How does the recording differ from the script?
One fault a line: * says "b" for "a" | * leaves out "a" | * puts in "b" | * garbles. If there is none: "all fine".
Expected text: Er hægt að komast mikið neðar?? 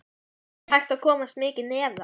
all fine